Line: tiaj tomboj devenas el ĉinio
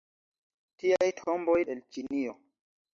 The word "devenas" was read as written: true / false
false